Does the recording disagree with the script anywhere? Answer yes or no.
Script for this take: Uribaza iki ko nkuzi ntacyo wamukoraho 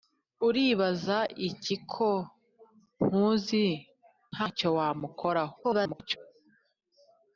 yes